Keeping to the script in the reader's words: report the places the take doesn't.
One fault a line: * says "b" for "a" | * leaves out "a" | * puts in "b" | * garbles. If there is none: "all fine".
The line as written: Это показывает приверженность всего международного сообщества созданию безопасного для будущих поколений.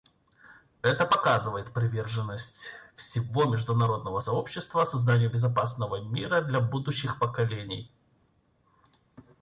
* puts in "мира"